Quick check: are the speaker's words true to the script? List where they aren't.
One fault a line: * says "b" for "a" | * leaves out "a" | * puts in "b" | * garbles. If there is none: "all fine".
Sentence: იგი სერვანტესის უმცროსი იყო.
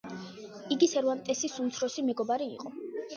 * puts in "მეგობარი"